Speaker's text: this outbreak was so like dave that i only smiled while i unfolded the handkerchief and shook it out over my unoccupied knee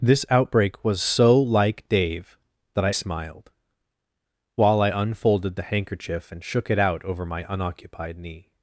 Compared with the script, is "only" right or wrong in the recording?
wrong